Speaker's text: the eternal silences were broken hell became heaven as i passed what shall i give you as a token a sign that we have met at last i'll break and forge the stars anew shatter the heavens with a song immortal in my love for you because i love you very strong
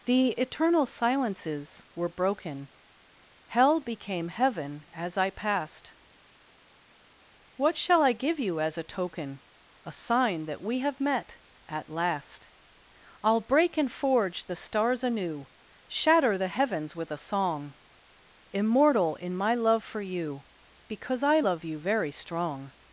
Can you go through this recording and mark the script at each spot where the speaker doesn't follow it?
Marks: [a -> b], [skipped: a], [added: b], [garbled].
the eternal silences were broken hell became heaven as i passed what shall i give you as a token a sign that we have met at last i'll break and forge the stars anew shatter the heavens with a song immortal in my love for you because i love you very strong